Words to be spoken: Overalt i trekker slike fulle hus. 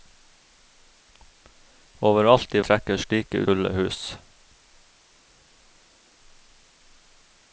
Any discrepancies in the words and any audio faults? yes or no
no